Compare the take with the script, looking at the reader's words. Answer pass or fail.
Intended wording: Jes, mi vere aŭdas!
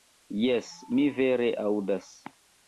pass